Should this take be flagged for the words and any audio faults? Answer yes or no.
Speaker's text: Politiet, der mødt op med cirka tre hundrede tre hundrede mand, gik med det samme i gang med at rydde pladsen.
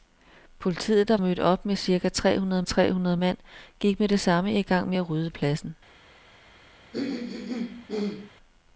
yes